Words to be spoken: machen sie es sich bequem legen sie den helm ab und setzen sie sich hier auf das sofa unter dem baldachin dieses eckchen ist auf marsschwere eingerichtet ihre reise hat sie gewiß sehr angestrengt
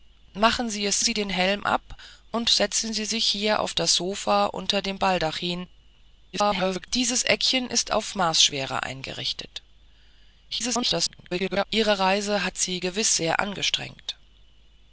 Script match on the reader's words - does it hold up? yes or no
no